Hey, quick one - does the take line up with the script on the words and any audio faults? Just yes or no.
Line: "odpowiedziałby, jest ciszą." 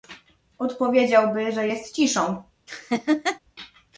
no